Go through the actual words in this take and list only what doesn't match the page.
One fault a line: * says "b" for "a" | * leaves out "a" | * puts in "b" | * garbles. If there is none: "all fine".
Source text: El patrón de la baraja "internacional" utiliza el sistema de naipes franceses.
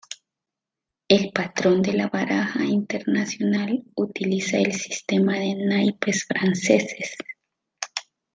all fine